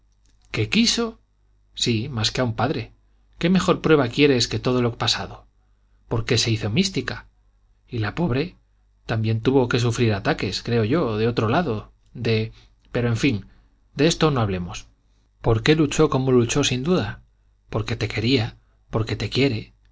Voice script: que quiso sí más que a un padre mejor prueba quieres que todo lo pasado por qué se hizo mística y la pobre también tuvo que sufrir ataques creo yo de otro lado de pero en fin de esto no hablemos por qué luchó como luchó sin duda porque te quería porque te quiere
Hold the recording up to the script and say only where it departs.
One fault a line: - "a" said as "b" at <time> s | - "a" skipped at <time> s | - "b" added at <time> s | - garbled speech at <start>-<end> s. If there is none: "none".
- "qué" added at 3.4 s